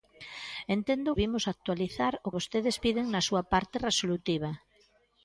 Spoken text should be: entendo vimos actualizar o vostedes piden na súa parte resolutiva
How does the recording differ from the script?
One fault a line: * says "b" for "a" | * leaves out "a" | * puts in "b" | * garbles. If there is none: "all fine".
all fine